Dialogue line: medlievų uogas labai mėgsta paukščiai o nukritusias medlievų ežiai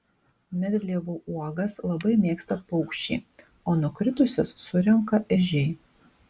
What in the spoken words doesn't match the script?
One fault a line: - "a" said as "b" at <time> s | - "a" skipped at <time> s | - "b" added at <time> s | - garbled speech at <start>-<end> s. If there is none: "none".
- "medlievų" said as "surenka" at 4.7 s